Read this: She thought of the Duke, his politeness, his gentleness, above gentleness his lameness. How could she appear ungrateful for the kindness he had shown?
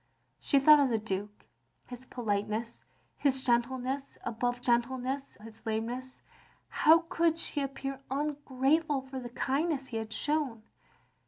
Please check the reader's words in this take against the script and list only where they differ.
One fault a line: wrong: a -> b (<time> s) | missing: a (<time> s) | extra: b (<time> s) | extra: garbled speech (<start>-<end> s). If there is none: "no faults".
no faults